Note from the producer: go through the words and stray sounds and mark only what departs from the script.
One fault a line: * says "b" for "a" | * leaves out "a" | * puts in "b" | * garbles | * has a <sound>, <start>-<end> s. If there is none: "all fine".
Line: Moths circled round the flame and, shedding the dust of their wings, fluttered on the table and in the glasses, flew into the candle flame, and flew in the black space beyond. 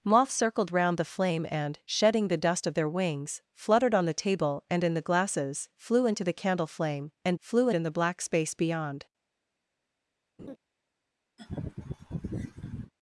* has a laugh, 10.4-10.6 s
* has a laugh, 11.4-12.9 s